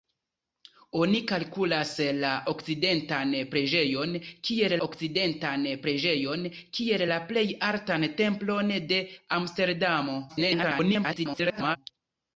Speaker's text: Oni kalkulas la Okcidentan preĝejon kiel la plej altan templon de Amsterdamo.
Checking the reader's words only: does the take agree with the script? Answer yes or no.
no